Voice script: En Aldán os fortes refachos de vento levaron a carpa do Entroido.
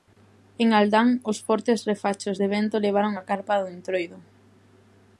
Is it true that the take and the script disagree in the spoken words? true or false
false